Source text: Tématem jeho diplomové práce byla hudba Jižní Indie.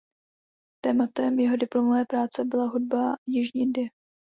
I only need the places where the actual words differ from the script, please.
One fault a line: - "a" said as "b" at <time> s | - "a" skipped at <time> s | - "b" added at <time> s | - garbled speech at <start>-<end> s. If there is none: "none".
none